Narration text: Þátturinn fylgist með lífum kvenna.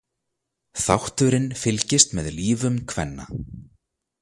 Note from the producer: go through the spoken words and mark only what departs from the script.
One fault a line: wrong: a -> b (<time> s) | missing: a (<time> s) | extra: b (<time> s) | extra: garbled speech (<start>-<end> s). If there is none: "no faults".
no faults